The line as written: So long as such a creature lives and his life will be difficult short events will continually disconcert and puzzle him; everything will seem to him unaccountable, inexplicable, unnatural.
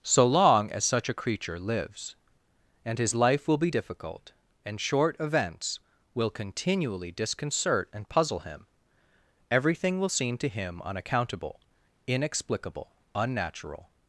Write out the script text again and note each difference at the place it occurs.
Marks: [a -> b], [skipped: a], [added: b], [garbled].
So long as such a creature lives and his life will be difficult [added: and] short events will continually disconcert and puzzle him; everything will seem to him unaccountable, inexplicable, unnatural.